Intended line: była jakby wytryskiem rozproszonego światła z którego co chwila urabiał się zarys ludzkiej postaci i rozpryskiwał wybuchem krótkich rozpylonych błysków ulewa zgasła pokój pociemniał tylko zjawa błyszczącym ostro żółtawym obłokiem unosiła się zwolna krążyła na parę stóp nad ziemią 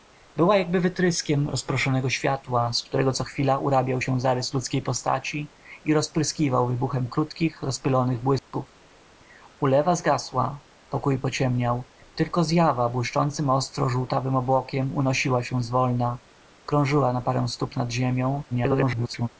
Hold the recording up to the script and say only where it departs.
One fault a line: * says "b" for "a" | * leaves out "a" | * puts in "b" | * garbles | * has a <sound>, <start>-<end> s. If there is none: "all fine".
* has a dropout, 8.4-8.5 s
* garbles